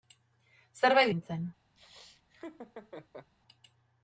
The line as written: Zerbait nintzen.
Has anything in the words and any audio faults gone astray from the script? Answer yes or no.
yes